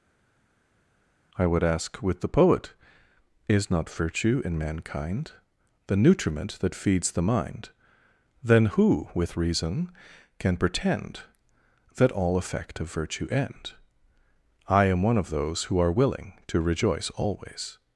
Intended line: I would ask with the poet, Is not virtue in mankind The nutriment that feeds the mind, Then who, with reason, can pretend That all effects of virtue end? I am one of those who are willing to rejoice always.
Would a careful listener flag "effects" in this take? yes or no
yes